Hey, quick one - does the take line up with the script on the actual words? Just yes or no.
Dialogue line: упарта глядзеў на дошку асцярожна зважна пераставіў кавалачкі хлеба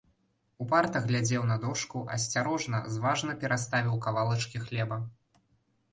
yes